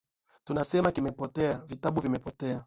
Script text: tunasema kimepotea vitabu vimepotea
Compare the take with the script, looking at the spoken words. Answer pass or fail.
pass